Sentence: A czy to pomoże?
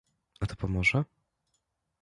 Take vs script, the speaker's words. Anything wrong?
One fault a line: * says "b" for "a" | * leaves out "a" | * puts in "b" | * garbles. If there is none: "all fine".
* leaves out "czy"